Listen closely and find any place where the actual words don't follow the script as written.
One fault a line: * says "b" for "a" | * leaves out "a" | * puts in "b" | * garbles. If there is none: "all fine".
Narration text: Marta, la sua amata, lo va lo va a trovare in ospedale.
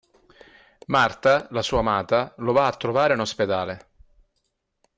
* leaves out "lo va"